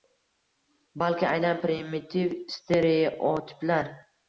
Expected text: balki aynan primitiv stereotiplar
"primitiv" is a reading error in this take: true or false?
false